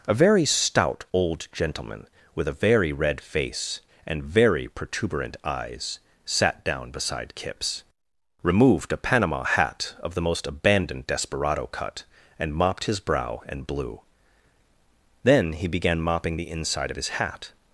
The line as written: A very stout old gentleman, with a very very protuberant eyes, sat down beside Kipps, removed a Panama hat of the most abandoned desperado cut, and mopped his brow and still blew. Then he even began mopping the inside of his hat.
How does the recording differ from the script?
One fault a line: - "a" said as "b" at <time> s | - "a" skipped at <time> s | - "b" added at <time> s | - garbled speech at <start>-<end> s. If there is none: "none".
- "red face and" added at 2.9 s
- "still" skipped at 13.7 s
- "even" skipped at 15.7 s